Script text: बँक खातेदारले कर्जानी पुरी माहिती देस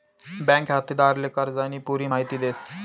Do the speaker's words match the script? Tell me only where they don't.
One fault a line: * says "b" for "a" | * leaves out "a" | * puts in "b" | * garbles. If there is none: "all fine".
all fine